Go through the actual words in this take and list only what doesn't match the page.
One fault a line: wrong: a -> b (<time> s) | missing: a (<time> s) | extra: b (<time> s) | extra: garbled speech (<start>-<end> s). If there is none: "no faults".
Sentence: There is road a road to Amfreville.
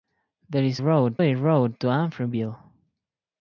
no faults